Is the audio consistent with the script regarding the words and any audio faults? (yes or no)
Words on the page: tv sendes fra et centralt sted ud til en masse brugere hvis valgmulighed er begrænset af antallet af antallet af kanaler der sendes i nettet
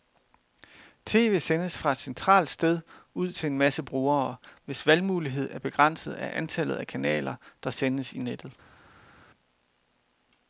no